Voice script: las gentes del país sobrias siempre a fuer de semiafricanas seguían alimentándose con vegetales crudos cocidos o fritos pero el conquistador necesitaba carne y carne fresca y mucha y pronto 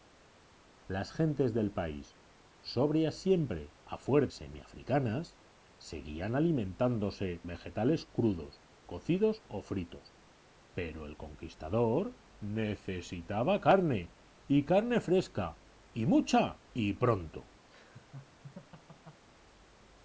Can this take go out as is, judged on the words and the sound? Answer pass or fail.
fail